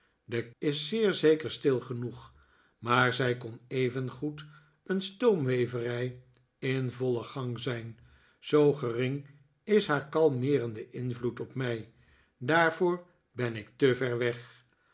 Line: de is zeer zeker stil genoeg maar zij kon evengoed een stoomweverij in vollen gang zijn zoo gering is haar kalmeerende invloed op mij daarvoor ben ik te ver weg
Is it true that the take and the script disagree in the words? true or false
false